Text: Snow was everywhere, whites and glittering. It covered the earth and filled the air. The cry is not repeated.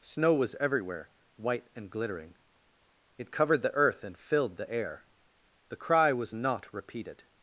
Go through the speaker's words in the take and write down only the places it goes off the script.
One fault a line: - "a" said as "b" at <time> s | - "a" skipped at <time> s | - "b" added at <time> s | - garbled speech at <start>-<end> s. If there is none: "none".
- "whites" said as "white" at 1.4 s
- "is" said as "was" at 6.1 s